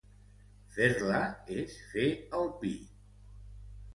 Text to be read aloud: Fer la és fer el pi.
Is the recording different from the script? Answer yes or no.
no